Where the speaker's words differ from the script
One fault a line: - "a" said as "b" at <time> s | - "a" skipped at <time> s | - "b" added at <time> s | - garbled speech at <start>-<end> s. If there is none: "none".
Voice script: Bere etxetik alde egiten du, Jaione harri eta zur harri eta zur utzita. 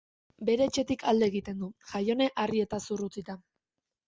- "harri eta zur" skipped at 3.0 s